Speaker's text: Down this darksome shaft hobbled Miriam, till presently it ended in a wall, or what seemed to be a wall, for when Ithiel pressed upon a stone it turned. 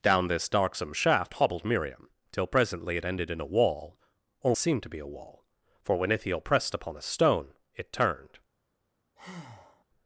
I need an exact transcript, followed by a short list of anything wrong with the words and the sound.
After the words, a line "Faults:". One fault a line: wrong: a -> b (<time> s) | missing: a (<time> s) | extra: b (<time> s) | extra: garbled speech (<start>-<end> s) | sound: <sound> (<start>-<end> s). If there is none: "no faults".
Down this darksome shaft hobbled Miriam, till presently it ended in a wall, or seemed to be a wall, for when Ithiel pressed upon a stone it turned.
Faults:
missing: what (4.5 s)
sound: breath (9.2-9.8 s)